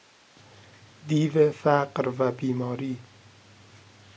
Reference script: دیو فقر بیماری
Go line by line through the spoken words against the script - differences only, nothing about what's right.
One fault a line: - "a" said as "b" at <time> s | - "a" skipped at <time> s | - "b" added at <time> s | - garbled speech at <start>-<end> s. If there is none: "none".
- "و" added at 2.2 s